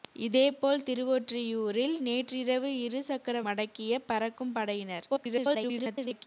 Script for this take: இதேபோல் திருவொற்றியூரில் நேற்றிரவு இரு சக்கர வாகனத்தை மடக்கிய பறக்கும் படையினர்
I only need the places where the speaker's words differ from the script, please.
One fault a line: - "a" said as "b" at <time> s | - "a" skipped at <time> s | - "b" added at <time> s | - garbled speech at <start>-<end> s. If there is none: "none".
- "வாகனத்தை" skipped at 3.4 s
- garbled speech at 5.1-6.3 s